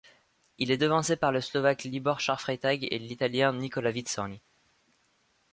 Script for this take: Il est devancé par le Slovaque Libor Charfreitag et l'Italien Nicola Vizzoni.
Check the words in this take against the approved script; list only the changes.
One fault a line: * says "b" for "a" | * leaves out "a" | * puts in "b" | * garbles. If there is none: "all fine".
all fine